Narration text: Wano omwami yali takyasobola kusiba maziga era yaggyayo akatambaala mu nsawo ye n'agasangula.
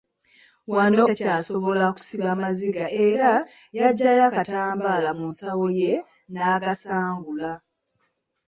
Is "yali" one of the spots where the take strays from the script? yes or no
yes